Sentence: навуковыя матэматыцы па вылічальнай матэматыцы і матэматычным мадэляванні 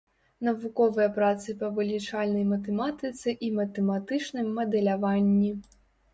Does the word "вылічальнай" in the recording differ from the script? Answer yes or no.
no